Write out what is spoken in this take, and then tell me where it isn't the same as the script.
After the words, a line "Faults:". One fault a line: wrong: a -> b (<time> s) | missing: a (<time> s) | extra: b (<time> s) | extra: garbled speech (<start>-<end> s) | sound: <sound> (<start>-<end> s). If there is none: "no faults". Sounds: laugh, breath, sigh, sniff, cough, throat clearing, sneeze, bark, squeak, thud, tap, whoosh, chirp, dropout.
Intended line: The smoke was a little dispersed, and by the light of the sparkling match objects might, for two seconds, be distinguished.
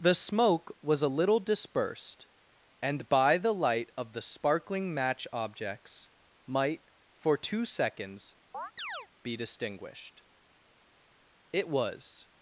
The smoke was a little dispersed, and by the light of the sparkling match objects might, for two seconds, be distinguished. It was
Faults:
sound: chirp (8.5-9.1 s)
extra: It was (11.5 s)